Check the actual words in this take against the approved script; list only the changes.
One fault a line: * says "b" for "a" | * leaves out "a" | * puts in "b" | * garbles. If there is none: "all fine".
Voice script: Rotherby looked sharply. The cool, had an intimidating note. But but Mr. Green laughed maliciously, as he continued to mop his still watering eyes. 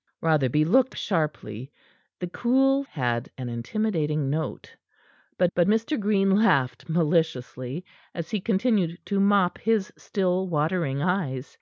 all fine